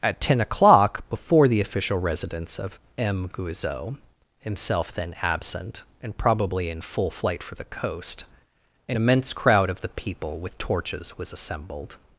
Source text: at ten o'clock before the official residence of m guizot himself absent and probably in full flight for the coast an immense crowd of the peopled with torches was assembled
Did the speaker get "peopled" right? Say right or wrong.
wrong